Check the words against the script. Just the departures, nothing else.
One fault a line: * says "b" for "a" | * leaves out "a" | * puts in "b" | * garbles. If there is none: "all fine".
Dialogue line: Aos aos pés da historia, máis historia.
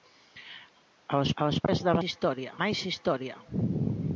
all fine